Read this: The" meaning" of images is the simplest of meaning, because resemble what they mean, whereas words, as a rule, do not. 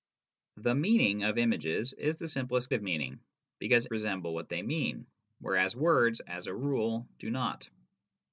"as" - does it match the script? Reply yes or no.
yes